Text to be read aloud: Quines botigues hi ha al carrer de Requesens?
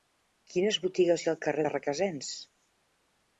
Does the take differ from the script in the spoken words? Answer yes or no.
no